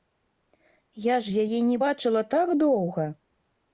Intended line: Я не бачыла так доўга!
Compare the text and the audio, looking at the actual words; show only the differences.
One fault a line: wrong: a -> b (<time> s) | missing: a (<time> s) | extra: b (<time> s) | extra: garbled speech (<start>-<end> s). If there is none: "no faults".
extra: ж яе (1.3 s)